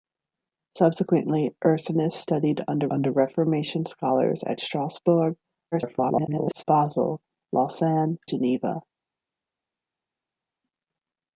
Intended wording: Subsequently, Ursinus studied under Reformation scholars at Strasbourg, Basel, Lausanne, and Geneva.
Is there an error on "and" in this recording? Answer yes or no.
yes